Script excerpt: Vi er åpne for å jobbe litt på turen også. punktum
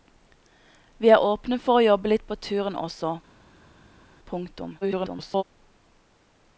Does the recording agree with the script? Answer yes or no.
no